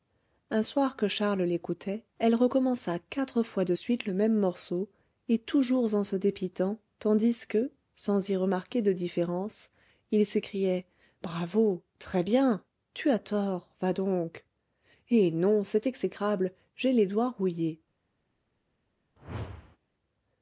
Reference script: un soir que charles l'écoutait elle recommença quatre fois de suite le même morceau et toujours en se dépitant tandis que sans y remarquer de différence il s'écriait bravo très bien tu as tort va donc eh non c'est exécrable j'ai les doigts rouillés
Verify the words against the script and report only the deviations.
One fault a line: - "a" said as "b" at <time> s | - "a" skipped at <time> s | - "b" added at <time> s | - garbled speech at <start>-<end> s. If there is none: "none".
none